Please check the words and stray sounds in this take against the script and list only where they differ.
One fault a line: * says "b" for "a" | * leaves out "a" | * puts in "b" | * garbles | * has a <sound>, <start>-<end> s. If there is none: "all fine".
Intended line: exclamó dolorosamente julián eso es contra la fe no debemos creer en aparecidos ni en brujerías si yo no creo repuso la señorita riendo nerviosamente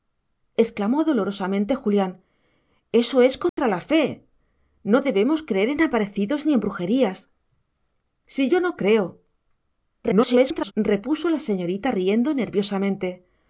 * has a dropout, 3.5-3.6 s
* garbles